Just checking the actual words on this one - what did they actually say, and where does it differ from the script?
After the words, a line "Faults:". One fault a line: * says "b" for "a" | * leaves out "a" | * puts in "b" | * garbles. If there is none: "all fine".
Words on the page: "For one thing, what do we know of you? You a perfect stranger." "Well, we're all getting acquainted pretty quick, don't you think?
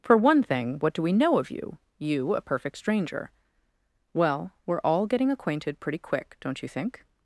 "For one thing, what do we know of you? You a perfect stranger." "Well, we're all getting acquainted pretty quick, don't you think?
Faults:
all fine